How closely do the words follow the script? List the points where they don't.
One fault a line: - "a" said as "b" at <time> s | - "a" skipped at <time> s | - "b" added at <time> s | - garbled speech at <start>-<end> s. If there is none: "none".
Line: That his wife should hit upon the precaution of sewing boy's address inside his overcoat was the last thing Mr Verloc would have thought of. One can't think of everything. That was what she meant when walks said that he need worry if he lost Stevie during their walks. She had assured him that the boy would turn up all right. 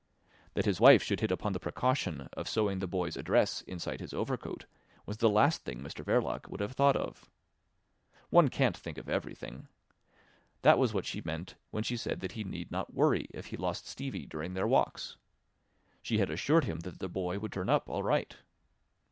- "the" added at 2.8 s
- "walks" said as "she" at 11.8 s
- "not" added at 12.7 s